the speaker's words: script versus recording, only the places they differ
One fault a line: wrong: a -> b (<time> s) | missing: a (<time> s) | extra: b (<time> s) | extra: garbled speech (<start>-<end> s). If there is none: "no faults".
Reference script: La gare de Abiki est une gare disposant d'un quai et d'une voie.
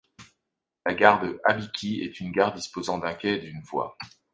no faults